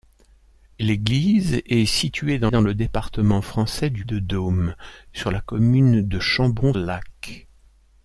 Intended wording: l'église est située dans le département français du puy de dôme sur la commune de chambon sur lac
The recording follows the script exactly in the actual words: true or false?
false